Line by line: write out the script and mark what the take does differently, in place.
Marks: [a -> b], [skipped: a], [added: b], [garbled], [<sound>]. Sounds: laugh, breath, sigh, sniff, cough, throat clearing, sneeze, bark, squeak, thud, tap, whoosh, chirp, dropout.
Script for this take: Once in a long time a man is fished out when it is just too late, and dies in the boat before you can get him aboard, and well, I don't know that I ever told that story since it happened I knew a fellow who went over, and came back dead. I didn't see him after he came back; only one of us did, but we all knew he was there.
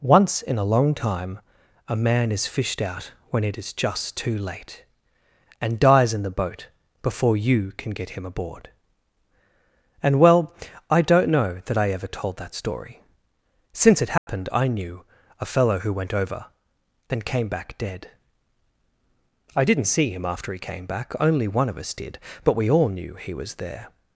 Once in a long time a man is fished out when it is just too late, and dies in the boat before you can get him aboard, and well, I don't know that I ever told that story since it happened [dropout] I knew a fellow who went over, [and -> then] came back dead. I didn't see him after he came back; only one of us did, but we all knew he was there.